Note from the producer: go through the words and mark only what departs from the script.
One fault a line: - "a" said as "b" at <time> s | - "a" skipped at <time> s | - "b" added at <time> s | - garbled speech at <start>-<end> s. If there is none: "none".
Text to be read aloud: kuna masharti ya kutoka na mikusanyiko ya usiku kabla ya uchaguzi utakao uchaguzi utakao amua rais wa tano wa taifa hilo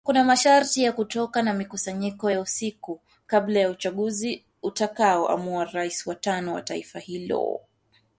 - "uchaguzi utakao" skipped at 5.3 s